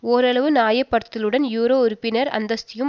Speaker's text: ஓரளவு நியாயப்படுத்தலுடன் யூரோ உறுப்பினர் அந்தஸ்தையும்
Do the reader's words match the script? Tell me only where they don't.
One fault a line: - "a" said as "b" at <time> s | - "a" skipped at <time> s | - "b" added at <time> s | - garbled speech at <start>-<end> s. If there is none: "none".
none